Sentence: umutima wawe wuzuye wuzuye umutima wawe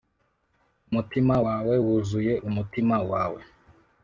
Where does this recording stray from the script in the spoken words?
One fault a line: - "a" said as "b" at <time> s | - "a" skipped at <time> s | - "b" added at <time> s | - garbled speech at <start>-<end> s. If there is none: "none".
- "wuzuye" skipped at 2.3 s